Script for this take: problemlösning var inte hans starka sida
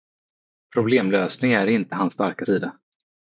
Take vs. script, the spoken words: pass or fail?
fail